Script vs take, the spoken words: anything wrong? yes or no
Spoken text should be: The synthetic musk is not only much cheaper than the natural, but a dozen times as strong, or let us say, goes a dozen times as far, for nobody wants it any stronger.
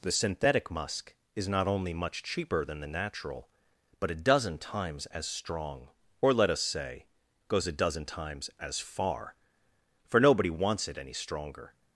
no